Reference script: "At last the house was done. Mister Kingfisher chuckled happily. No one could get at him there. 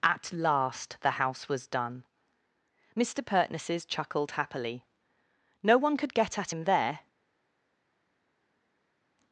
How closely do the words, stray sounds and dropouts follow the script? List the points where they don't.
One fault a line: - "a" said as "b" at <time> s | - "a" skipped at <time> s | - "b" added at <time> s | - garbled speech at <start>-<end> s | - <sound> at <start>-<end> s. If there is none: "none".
- "Kingfisher" said as "Pertnesses" at 3.2 s